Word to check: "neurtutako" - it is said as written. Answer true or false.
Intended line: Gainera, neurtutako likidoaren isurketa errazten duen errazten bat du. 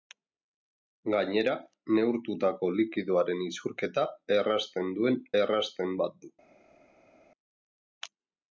true